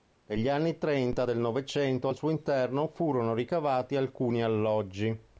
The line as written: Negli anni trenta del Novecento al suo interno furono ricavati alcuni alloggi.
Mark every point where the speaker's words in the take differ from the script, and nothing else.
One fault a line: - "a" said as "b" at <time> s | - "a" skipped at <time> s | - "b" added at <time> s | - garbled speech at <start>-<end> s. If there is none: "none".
none